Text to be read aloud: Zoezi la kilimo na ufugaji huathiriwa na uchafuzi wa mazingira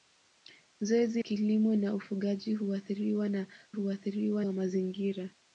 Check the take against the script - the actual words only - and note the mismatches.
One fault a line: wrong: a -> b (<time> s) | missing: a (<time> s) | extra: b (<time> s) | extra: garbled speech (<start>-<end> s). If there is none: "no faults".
missing: la (1.2 s)
wrong: uchafuzi -> huathiriwa (3.7 s)